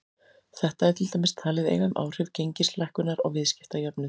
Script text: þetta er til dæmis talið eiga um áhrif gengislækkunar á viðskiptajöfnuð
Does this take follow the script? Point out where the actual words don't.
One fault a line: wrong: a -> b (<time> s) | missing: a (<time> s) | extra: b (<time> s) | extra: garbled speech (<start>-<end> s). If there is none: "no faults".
no faults